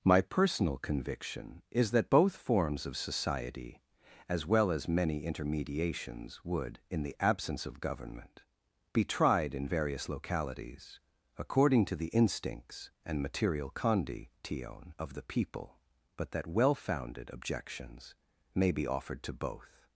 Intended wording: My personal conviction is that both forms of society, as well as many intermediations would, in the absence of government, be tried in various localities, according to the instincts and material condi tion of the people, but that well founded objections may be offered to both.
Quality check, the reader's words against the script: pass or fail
pass